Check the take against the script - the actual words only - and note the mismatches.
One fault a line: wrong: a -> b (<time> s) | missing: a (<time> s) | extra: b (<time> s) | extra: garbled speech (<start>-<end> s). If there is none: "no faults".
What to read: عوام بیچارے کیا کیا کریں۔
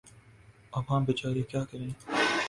missing: کیا (1.6 s)